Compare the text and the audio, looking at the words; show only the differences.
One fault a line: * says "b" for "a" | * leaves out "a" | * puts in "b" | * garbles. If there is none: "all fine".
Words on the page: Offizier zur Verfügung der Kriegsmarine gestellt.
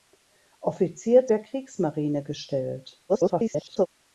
* leaves out "zur Verfügung"
* garbles